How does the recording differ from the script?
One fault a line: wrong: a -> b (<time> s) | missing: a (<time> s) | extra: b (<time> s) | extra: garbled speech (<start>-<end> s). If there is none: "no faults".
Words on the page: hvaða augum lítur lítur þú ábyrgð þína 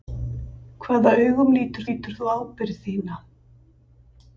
no faults